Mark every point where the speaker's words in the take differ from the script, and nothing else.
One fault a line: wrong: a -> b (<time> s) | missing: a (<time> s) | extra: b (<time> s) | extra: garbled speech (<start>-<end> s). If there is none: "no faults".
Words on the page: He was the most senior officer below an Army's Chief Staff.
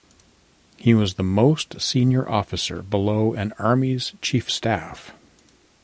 no faults